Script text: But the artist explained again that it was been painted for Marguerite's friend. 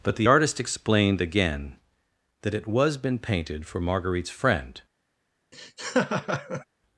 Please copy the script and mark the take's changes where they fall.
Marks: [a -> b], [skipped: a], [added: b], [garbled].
But the artist explained again that it was been painted for Marguerite's friend.